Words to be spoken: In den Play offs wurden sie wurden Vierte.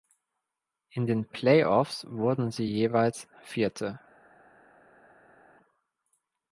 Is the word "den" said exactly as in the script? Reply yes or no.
yes